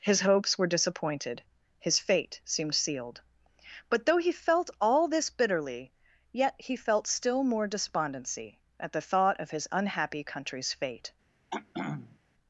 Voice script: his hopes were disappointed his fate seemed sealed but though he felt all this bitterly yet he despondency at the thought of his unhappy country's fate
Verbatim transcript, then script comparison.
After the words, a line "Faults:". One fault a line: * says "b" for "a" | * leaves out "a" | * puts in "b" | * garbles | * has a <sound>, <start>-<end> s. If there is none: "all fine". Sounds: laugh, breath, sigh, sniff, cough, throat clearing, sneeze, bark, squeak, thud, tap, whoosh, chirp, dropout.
his hopes were disappointed his fate seemed sealed but though he felt all this bitterly yet he felt still more despondency at the thought of his unhappy country's fate
Faults:
* puts in "felt still more"
* has a throat clearing, 11.5-12.2 s